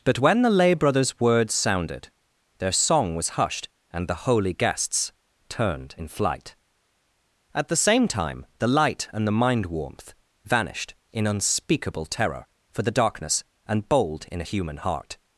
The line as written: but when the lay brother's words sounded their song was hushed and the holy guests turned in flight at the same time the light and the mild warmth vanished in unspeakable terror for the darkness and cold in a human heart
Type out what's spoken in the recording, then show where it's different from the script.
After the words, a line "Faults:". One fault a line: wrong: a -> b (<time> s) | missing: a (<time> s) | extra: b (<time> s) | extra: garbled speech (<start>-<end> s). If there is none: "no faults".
but when the lay brother's words sounded their song was hushed and the holy guests turned in flight at the same time the light and the mind warmth vanished in unspeakable terror for the darkness and bold in a human heart
Faults:
wrong: mild -> mind (9.3 s)
wrong: cold -> bold (13.9 s)